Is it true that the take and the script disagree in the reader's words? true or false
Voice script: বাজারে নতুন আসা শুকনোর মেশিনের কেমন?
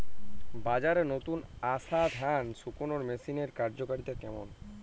true